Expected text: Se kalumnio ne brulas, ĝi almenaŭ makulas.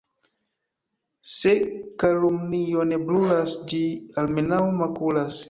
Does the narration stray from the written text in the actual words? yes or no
no